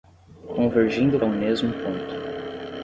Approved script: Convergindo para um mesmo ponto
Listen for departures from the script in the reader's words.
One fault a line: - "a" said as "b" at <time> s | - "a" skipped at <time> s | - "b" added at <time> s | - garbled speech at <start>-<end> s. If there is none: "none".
- "para" skipped at 1.2 s